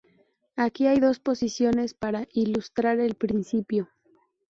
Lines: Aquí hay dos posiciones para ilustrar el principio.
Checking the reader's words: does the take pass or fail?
pass